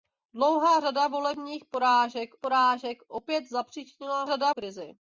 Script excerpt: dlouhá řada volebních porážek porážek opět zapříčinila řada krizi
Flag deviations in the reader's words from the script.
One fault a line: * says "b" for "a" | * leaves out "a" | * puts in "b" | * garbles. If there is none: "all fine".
all fine